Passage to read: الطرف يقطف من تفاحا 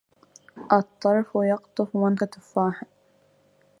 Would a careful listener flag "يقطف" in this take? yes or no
no